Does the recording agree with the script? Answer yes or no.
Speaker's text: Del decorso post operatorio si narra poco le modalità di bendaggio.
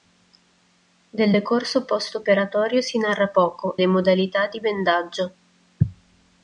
yes